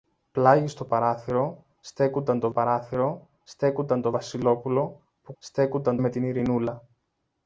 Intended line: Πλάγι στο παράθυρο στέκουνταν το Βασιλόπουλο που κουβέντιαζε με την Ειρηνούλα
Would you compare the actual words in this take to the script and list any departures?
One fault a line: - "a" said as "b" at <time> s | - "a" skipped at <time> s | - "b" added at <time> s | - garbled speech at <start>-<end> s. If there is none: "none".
- "παράθυρο στέκουνταν το" added at 2.5 s
- "κουβέντιαζε" said as "στέκουνταν" at 5.4 s